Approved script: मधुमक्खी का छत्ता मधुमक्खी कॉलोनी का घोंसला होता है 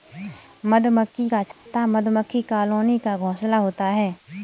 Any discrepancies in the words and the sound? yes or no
yes